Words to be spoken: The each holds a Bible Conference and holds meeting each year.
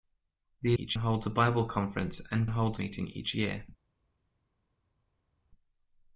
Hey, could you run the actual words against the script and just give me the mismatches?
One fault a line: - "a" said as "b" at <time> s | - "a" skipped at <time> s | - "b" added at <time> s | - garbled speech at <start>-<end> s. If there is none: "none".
none